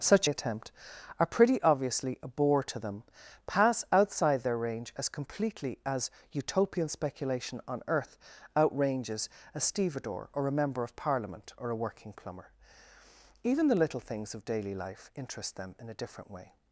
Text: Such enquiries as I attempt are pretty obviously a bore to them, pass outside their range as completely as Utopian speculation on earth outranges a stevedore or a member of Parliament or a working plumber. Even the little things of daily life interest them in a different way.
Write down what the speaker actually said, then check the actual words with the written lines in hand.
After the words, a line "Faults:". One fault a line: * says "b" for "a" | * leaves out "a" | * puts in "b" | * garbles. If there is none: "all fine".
Such attempt are pretty obviously a bore to them, pass outside their range as completely as Utopian speculation on earth outranges a stevedore or a member of Parliament or a working plumber. Even the little things of daily life interest them in a different way.
Faults:
* leaves out "enquiries as I"